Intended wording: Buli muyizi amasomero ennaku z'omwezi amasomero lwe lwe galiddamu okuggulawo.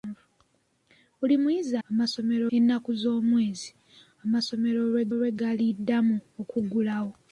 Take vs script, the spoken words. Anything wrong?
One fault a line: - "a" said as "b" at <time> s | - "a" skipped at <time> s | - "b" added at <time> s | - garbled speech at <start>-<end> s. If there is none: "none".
none